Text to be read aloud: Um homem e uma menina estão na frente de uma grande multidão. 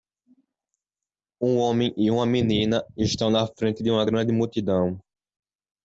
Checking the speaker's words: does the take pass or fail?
pass